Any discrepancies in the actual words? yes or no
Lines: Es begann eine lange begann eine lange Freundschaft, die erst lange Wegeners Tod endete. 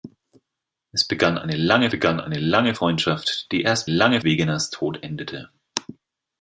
no